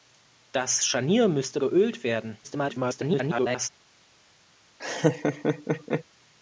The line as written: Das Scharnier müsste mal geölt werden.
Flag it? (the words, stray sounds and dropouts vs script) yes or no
yes